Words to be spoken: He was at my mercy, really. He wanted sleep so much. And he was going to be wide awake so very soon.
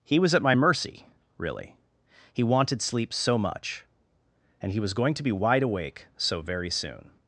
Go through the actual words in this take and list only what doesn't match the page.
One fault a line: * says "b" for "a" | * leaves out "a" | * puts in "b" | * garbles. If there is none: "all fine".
all fine